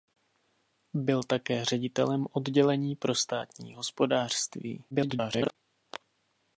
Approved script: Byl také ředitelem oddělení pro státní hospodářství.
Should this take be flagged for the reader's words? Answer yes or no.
yes